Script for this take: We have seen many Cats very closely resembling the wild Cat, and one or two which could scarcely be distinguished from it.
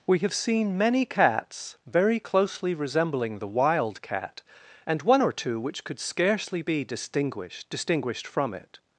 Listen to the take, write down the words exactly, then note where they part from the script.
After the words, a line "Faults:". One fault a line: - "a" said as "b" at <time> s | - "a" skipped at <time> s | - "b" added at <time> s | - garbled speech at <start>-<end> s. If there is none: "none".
We have seen many Cats very closely resembling the wild Cat, and one or two which could scarcely be distinguished distinguished from it.
Faults:
- "distinguished" added at 7.7 s